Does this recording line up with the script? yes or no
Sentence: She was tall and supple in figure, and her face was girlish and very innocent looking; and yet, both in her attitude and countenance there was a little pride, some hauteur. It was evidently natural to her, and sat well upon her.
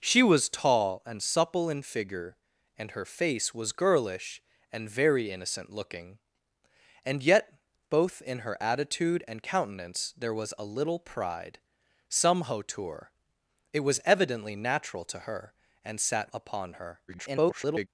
no